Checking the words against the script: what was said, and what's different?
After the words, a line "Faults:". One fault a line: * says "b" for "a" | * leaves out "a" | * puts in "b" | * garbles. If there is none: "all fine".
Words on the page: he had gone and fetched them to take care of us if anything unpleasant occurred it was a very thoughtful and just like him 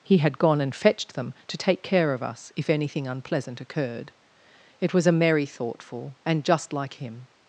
he had gone and fetched them to take care of us if anything unpleasant occurred it was a merry thoughtful and just like him
Faults:
* says "merry" for "very"